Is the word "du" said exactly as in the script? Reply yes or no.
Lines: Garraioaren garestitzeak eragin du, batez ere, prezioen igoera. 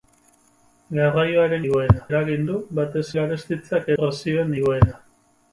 yes